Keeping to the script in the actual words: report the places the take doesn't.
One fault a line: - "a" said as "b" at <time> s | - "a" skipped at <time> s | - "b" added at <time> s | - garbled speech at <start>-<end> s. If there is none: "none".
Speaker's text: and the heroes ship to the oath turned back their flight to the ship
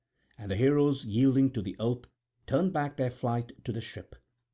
- "ship" said as "yielding" at 1.0 s